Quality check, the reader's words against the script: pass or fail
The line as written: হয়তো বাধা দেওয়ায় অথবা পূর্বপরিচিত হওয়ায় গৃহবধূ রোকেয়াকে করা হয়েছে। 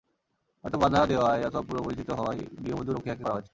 pass